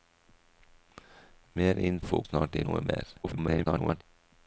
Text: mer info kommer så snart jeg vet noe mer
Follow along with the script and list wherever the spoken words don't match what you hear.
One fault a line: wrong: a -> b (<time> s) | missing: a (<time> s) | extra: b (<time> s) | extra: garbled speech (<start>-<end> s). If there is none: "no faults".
missing: kommer så (2.2 s)
missing: vet (2.7 s)
extra: garbled speech (3.2-4.0 s)